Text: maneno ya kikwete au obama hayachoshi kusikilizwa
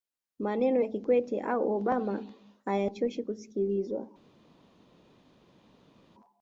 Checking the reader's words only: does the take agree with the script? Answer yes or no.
yes